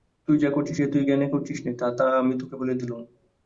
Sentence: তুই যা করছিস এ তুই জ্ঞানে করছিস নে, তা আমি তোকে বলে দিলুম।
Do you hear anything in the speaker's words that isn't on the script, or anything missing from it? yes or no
no